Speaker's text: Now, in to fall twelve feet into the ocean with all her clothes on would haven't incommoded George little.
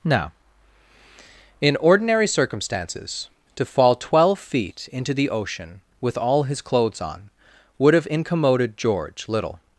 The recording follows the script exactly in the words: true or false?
false